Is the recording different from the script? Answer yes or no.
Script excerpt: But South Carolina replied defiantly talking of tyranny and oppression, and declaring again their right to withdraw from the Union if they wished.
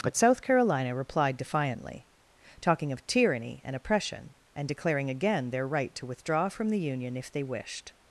no